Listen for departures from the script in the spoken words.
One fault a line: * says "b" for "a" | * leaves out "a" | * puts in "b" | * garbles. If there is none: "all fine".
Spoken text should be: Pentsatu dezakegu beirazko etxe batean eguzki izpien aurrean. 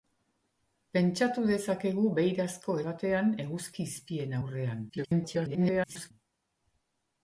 * leaves out "etxe"
* garbles